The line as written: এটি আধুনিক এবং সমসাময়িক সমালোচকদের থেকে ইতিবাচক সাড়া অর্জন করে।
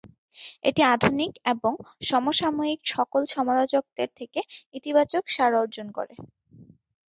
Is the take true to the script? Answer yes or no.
no